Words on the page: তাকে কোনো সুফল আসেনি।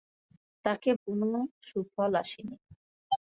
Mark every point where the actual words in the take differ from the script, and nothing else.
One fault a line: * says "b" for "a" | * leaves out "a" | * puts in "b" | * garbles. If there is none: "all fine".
all fine